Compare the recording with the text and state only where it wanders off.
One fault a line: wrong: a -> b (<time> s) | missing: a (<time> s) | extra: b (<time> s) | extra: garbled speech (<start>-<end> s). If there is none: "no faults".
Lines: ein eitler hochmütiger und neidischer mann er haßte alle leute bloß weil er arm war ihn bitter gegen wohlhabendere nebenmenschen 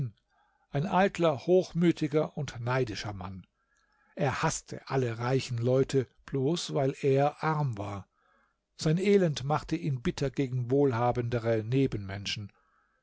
extra: reichen (5.2 s)
extra: sein elend machte (8.8 s)